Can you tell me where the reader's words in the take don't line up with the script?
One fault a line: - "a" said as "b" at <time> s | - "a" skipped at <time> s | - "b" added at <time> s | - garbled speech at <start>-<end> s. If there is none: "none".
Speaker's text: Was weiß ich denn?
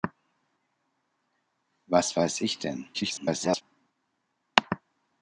- garbled speech at 2.9-3.6 s